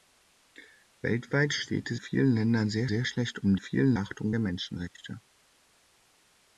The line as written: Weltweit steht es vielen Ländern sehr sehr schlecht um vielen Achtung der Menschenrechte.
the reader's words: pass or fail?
pass